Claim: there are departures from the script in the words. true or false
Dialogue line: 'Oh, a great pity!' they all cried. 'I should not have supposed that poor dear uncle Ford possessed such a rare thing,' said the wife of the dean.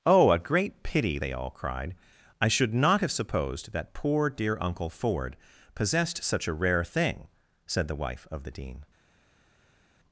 false